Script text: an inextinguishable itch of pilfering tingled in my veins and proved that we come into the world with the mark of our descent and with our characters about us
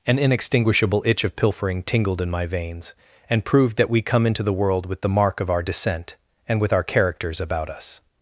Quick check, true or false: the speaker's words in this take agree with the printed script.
true